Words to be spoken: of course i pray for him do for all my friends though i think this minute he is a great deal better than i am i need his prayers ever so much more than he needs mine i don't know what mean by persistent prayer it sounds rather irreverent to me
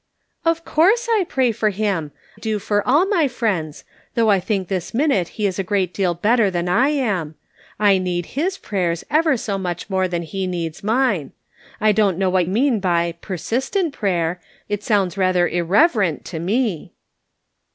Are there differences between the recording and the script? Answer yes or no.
no